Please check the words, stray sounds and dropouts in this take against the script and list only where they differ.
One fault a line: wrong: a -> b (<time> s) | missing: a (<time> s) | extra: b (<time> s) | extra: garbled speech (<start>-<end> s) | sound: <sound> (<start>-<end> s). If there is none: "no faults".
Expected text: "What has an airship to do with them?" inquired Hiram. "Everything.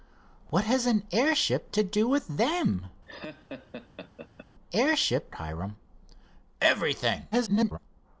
sound: laugh (3.1-4.5 s)
wrong: inquired -> airship (4.7 s)
extra: garbled speech (7.3-7.8 s)